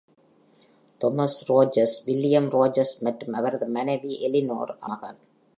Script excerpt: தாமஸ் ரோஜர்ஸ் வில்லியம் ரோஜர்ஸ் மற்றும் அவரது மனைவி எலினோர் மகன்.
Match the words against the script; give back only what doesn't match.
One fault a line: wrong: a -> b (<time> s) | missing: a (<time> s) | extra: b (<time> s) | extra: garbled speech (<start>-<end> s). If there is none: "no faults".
no faults